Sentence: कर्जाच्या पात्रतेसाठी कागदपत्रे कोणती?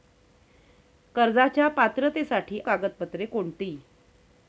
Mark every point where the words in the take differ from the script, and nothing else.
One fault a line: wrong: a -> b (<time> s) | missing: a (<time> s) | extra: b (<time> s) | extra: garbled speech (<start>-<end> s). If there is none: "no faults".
no faults